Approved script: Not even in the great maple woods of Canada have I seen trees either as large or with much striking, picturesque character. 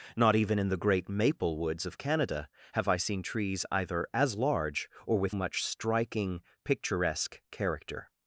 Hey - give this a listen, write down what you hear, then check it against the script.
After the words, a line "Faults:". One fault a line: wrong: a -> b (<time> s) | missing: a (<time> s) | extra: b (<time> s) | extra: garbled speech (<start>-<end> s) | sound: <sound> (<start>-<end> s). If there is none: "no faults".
Not even in the great maple woods of Canada have I seen trees either as large or with much striking, picturesque character.
Faults:
no faults